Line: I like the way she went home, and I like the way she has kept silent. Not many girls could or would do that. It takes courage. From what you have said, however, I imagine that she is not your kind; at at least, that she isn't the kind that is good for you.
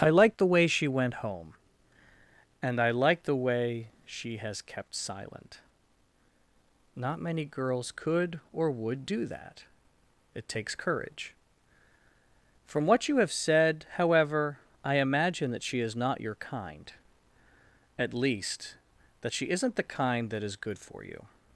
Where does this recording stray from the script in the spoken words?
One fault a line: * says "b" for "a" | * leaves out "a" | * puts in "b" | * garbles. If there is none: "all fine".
* leaves out "at"